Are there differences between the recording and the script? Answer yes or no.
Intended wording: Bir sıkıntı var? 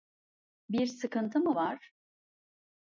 yes